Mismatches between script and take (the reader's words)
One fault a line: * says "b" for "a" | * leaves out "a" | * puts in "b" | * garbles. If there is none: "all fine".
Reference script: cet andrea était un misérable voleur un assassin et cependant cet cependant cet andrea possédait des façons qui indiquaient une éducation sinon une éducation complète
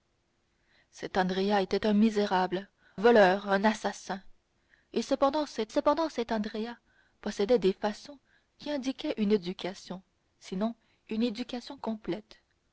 all fine